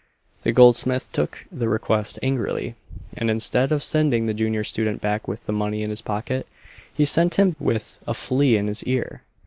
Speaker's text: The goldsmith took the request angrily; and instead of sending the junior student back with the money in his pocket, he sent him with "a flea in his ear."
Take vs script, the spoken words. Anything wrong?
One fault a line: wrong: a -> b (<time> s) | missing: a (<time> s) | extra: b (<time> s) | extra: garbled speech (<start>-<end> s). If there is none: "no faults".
no faults